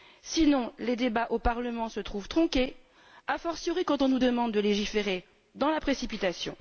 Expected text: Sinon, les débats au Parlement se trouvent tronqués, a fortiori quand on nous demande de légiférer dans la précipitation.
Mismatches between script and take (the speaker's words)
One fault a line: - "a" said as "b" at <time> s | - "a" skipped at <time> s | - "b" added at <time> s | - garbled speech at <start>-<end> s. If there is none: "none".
none